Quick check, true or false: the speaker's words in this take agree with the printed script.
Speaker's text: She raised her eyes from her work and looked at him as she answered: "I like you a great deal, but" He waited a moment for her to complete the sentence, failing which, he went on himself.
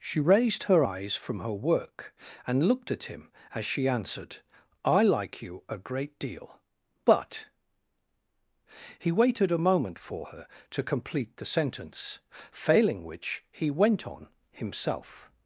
true